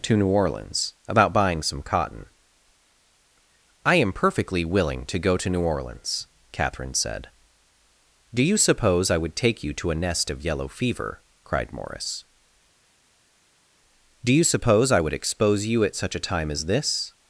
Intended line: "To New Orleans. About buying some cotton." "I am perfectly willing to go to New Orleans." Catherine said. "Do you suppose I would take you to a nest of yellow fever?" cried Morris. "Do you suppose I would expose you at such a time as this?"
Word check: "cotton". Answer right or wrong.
right